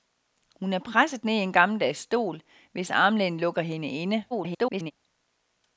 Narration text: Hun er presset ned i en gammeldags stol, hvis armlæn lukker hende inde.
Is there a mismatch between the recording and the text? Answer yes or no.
yes